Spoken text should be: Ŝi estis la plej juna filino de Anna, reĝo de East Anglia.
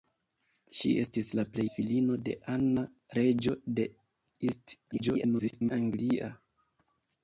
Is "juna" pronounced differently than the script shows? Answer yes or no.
yes